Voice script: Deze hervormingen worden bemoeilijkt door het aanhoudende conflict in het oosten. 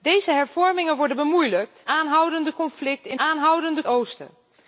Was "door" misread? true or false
true